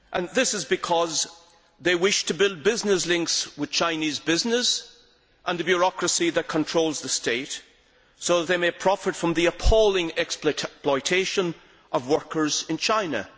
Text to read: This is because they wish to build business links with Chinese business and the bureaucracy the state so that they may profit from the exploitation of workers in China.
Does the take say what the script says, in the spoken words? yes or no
no